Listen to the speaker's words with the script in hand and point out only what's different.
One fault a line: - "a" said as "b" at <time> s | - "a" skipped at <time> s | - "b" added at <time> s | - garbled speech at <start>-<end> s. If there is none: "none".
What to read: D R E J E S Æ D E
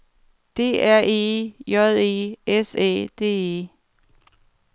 none